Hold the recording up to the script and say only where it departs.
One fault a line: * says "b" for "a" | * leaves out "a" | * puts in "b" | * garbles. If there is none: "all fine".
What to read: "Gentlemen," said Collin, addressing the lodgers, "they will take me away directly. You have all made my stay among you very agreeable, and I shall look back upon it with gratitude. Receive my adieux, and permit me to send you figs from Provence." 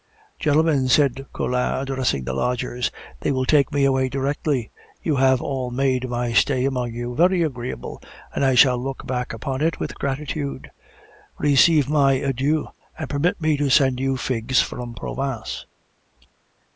all fine